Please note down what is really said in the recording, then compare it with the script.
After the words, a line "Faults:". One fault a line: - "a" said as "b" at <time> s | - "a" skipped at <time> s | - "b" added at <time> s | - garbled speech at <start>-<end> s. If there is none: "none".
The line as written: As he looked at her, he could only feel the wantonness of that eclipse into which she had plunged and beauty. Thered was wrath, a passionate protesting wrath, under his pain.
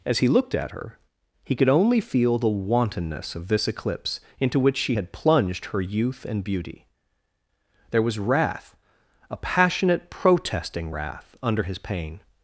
As he looked at her, he could only feel the wantonness of this eclipse into which she had plunged her youth and beauty. There was wrath, a passionate protesting wrath, under his pain.
Faults:
- "that" said as "this" at 3.5 s
- "her youth" added at 5.7 s
- "Thered" said as "There" at 7.9 s